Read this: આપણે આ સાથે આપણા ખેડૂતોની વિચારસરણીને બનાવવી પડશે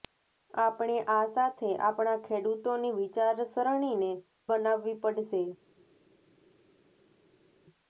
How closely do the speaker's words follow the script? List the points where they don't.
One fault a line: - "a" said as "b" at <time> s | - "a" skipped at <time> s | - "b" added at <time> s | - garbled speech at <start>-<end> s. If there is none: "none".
none